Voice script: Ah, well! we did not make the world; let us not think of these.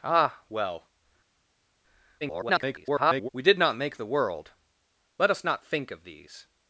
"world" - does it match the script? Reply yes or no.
yes